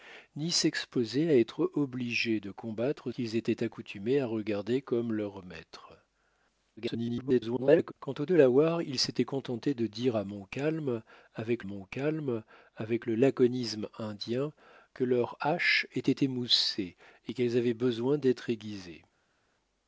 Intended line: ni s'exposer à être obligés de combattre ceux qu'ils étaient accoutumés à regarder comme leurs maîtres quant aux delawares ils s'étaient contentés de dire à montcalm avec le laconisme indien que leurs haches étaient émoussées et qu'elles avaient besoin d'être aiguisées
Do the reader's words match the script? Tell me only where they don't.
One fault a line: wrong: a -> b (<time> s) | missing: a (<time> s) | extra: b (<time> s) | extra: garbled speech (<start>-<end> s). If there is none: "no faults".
missing: ceux (3.1 s)
extra: garbled speech (6.8-7.9 s)
extra: montcalm avec (11.6 s)